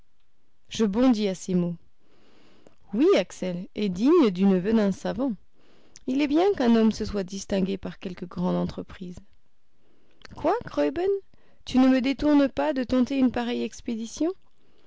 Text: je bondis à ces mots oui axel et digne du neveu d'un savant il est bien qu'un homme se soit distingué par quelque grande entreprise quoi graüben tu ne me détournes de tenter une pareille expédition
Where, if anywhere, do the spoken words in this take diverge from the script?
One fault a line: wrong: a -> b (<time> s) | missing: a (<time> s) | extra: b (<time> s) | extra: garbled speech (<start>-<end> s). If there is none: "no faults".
extra: pas (12.5 s)